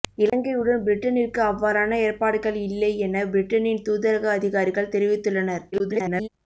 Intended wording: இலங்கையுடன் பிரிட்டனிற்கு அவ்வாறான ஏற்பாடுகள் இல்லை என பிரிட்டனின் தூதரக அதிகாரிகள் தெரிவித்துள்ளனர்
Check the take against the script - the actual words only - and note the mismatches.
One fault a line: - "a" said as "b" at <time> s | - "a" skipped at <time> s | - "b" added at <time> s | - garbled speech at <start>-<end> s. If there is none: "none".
- garbled speech at 5.7-6.3 s